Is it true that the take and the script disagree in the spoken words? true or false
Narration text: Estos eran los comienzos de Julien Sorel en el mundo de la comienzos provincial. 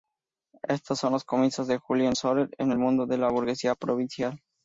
true